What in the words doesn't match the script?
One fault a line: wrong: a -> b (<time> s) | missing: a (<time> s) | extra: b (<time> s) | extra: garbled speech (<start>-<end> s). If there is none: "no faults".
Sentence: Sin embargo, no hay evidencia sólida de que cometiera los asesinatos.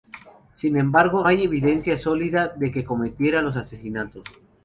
missing: no (1.3 s)